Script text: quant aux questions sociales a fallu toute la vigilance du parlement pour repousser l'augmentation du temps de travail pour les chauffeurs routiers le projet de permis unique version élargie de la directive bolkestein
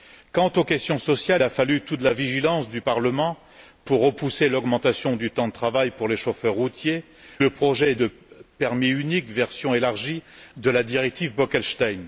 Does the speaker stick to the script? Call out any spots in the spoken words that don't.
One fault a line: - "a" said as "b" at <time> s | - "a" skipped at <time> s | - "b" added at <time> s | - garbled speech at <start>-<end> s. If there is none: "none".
none